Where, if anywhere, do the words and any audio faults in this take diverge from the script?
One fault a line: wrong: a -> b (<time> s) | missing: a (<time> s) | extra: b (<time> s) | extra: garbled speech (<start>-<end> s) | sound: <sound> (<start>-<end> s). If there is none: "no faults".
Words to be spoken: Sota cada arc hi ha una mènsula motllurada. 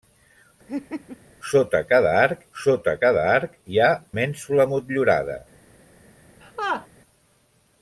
sound: laugh (0.7-1.2 s)
extra: sota cada arc (2.6 s)
missing: una (3.9 s)
sound: laugh (6.4-6.9 s)